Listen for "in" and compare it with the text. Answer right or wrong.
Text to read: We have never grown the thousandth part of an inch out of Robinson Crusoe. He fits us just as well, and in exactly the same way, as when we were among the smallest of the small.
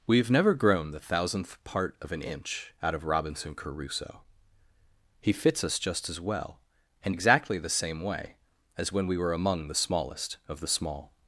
wrong